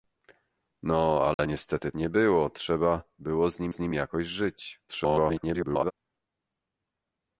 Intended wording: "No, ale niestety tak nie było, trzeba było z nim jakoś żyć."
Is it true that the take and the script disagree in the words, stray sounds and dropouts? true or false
true